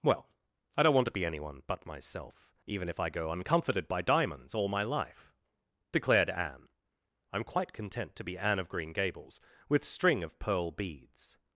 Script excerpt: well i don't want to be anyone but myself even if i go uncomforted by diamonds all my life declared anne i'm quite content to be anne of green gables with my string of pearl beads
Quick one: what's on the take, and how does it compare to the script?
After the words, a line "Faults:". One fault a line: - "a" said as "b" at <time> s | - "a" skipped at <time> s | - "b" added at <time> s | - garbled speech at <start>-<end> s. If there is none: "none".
well i don't want to be anyone but myself even if i go uncomforted by diamonds all my life declared anne i'm quite content to be anne of green gables with string of pearl beads
Faults:
- "my" skipped at 9.8 s